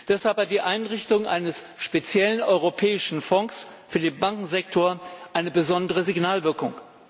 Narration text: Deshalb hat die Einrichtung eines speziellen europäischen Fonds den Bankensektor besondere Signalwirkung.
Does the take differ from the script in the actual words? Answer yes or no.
yes